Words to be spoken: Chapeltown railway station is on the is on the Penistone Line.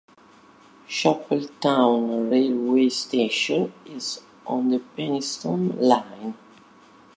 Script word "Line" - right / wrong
right